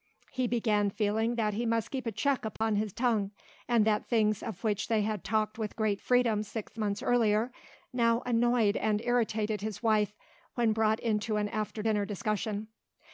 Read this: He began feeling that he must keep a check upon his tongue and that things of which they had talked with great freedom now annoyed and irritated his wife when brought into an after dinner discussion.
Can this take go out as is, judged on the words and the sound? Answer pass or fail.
fail